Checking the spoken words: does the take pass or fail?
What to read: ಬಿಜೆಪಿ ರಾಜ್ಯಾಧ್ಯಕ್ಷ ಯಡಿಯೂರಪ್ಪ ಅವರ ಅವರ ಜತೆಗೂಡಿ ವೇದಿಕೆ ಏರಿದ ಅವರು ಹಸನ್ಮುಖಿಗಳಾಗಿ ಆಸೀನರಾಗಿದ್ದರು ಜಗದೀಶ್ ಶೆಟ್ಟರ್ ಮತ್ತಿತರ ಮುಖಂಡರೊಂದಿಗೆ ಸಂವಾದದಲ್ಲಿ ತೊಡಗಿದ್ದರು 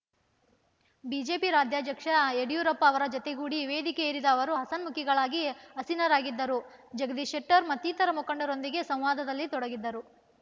fail